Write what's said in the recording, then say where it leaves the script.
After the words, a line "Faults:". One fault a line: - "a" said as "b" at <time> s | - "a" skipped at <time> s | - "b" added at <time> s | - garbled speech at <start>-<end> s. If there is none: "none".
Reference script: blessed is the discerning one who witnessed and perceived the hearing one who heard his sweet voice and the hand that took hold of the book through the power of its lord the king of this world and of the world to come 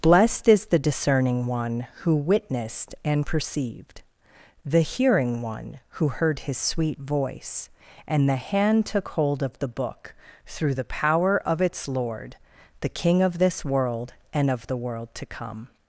blessed is the discerning one who witnessed and perceived the hearing one who heard his sweet voice and the hand took hold of the book through the power of its lord the king of this world and of the world to come
Faults:
- "that" skipped at 8.9 s